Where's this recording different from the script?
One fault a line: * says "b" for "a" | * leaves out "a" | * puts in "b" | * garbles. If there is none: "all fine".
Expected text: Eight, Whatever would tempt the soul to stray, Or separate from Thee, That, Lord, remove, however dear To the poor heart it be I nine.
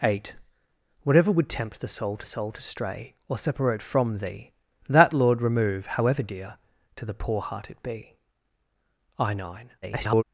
* puts in "soul to"
* garbles